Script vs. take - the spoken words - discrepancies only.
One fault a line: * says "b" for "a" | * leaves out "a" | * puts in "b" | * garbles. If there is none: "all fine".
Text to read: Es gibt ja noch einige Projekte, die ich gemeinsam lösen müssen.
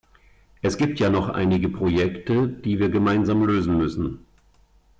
* says "wir" for "ich"